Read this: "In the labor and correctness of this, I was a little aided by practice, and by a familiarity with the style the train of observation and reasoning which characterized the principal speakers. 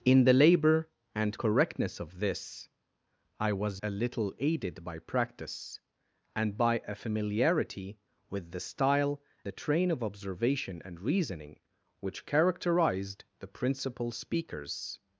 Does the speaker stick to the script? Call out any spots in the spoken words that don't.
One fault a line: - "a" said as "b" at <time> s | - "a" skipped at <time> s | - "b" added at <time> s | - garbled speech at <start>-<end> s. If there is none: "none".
none